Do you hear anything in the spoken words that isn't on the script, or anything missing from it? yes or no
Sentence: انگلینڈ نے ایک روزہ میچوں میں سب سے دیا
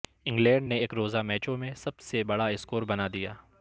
yes